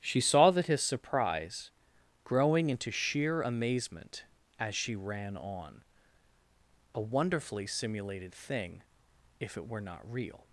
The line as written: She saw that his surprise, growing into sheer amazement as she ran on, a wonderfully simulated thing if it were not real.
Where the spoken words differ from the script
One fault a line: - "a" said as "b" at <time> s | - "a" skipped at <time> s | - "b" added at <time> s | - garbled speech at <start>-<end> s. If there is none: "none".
none